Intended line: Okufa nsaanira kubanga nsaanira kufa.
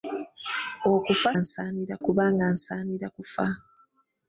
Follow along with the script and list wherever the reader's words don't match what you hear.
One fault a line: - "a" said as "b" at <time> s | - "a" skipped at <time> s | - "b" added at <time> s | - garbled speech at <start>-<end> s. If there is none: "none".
none